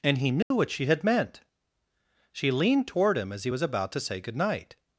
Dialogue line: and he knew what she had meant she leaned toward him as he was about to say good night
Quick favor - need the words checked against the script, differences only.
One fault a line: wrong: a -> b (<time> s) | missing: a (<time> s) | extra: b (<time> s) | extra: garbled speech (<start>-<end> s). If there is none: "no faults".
no faults